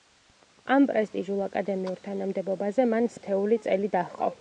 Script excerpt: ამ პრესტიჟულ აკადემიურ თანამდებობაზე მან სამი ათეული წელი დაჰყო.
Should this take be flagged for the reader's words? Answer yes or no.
yes